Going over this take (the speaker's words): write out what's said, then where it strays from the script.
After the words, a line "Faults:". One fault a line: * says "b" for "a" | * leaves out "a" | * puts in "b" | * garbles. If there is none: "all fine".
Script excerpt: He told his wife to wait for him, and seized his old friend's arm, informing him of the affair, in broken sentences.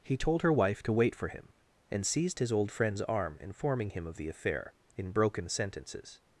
He told her wife to wait for him, and seized his old friend's arm, informing him of the affair, in broken sentences.
Faults:
* says "her" for "his"